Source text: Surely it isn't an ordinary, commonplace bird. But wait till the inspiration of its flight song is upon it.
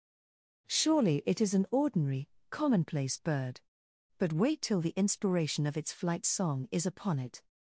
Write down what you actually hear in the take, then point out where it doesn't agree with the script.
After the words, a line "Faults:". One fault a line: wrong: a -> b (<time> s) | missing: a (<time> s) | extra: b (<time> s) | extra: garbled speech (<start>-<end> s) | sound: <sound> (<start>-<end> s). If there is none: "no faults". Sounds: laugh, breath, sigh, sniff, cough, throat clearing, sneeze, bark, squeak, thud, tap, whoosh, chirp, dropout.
Surely it is an ordinary, commonplace bird. But wait till the inspiration of its flight song is upon it.
Faults:
wrong: isn't -> is (1.4 s)